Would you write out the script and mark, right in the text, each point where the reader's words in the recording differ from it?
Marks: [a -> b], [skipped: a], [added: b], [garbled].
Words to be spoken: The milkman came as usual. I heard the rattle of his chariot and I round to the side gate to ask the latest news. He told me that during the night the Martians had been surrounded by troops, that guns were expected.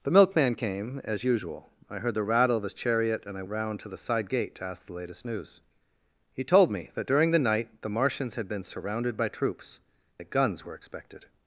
The milkman came as usual. I heard the rattle of his chariot and I round to the side gate to ask the latest news. He told me that during the night the Martians had been surrounded by troops, that guns were expected.